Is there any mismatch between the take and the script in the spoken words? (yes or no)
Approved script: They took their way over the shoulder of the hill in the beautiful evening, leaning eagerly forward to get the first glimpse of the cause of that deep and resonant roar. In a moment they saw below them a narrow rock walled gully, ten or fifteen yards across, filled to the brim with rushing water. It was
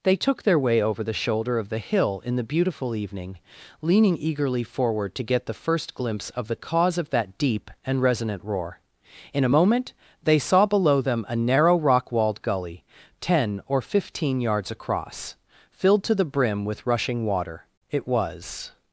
no